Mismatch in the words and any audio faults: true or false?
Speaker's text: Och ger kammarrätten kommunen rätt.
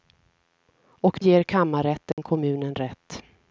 true